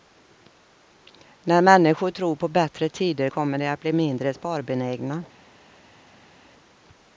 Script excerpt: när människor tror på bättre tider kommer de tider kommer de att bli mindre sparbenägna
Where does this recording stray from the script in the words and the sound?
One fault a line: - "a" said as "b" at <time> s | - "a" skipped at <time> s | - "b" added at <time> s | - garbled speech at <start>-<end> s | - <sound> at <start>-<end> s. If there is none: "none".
- "tider kommer de" skipped at 3.7 s